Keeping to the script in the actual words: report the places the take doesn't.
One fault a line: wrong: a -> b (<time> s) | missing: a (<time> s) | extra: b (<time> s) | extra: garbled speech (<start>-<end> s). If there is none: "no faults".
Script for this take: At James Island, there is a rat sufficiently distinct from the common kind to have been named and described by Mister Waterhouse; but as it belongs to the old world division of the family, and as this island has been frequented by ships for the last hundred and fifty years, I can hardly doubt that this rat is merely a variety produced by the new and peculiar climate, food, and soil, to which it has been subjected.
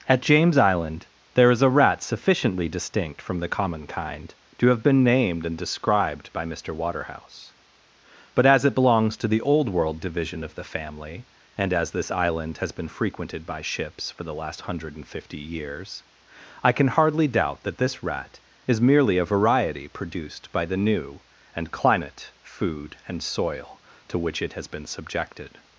missing: peculiar (21.7 s)